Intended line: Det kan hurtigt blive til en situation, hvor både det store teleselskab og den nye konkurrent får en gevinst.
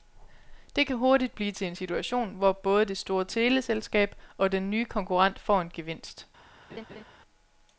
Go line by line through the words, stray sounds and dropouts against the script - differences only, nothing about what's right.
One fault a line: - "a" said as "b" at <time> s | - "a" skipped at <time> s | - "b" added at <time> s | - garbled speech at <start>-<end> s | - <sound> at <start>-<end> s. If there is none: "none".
- laugh at 6.7-7.0 s